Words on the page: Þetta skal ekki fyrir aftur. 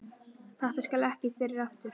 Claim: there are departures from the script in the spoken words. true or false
false